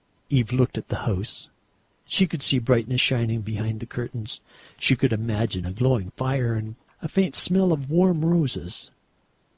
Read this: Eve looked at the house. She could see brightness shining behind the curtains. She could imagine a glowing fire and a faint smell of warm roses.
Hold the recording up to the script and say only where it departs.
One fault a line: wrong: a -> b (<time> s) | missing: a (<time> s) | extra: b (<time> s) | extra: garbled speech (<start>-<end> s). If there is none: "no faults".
no faults